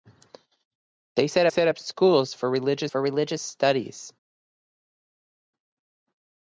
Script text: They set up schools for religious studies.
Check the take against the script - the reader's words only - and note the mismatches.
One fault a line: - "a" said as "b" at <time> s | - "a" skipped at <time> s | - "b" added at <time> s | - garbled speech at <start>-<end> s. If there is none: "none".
- "set" added at 1.5 s
- "for religious" added at 2.9 s